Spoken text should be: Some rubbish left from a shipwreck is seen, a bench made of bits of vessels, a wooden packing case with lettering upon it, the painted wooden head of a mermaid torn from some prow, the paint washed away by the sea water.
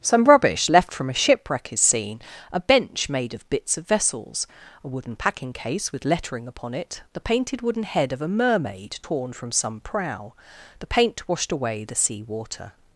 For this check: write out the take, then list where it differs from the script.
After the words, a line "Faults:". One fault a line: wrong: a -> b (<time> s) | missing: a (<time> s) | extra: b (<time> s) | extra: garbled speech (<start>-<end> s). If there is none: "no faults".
Some rubbish left from a shipwreck is seen, a bench made of bits of vessels, a wooden packing case with lettering upon it, the painted wooden head of a mermaid torn from some prow, the paint washed away the sea water.
Faults:
missing: by (11.8 s)